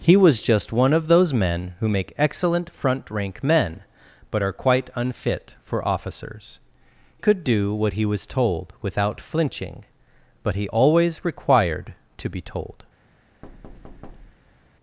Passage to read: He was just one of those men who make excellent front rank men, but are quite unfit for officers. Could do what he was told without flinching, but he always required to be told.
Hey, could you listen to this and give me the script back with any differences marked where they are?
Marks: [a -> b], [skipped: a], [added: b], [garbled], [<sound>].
He was just one of those men who make excellent front rank men, but are quite unfit for officers. Could do what he was told without flinching, but he always required to be told. [thud]